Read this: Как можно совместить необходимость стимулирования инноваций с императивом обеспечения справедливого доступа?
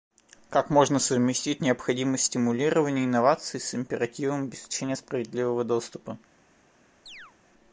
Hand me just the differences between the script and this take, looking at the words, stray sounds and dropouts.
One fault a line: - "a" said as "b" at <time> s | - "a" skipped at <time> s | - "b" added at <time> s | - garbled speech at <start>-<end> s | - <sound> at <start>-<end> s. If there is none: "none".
- chirp at 7.1-7.3 s